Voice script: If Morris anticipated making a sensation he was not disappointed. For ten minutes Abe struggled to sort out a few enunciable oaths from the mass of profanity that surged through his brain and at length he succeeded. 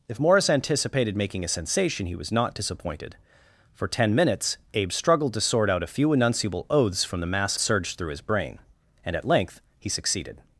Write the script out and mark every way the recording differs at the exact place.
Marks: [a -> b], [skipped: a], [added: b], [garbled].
If Morris anticipated making a sensation he was not disappointed. For ten minutes Abe struggled to sort out a few enunciable oaths from the mass [skipped: of profanity that] surged through his brain and at length he succeeded.